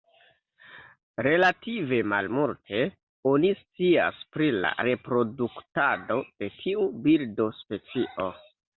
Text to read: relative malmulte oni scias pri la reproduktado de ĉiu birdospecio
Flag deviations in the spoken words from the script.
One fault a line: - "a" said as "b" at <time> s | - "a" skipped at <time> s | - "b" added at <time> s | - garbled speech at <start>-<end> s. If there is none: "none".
- "ĉiu" said as "tiu" at 6.6 s